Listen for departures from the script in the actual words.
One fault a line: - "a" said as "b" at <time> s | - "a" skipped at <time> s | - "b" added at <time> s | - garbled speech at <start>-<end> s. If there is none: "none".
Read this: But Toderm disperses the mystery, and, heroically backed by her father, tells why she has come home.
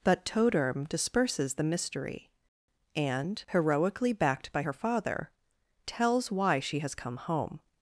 none